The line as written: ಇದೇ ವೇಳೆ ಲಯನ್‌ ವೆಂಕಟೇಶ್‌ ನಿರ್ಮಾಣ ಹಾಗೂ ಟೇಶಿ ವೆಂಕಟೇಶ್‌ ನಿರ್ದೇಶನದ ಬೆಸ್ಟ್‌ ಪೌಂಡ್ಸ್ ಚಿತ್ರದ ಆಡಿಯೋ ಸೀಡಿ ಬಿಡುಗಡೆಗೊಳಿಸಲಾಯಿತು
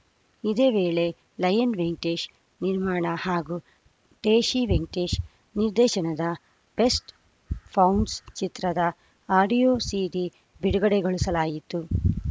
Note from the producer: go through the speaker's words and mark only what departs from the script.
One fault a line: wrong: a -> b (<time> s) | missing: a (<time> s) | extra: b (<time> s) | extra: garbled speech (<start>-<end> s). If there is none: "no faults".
no faults